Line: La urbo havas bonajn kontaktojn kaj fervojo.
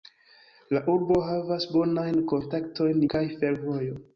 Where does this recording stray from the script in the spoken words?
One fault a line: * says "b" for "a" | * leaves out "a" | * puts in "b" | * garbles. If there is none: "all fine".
all fine